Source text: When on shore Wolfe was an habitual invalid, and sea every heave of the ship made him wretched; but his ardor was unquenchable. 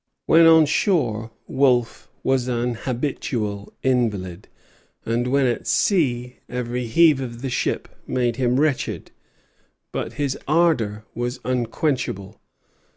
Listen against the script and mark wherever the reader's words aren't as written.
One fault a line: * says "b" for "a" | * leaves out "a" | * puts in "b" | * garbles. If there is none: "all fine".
* puts in "when at"